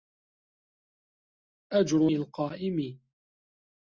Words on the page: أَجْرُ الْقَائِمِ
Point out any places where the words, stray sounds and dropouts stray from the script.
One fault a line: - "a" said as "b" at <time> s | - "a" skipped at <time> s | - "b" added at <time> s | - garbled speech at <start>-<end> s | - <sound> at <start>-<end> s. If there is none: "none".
none